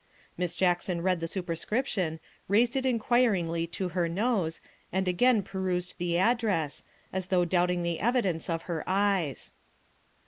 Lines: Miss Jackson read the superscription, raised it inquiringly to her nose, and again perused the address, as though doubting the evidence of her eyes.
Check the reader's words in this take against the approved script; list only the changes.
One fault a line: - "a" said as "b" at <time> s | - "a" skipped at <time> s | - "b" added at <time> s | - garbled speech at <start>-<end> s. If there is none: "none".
none